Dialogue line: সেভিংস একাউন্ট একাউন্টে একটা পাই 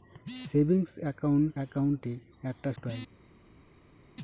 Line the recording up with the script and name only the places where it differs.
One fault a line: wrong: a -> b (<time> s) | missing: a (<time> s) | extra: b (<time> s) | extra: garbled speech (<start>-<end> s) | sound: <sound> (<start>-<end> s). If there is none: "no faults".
no faults